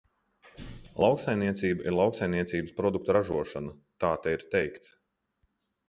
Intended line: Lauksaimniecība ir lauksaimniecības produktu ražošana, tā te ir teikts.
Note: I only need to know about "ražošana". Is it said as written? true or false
true